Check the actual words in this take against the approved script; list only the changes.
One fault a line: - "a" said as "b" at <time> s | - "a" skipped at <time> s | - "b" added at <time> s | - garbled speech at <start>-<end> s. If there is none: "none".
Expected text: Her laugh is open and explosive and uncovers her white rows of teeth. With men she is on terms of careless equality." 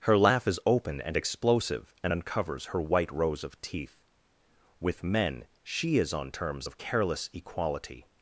none